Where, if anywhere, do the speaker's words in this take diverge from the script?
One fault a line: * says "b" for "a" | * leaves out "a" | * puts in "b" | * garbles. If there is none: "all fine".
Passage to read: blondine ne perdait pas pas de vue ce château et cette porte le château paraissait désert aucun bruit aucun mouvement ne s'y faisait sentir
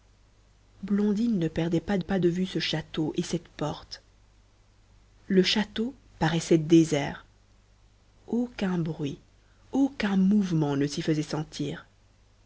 all fine